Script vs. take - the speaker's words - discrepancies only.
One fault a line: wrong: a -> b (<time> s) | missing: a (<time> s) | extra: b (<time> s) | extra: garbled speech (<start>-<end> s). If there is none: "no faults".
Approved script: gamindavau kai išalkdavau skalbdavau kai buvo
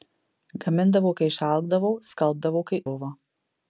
no faults